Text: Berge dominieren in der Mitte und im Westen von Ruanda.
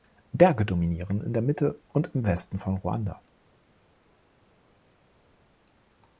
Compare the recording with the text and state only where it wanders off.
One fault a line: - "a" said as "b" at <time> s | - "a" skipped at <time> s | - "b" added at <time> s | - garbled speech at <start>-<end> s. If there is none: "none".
none